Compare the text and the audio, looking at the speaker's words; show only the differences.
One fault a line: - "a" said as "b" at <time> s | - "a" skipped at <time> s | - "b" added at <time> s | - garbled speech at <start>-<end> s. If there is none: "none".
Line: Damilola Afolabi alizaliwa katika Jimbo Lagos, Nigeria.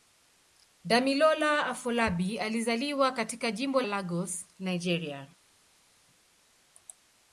none